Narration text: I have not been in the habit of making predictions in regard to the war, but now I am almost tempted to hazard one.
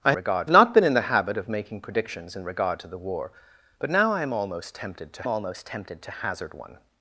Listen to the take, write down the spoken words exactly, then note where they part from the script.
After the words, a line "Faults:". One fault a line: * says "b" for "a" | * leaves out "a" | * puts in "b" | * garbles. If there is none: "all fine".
I regard not been in the habit of making predictions in regard to the war, but now I am almost tempted to almost tempted to hazard one.
Faults:
* says "regard" for "have"
* puts in "almost tempted to"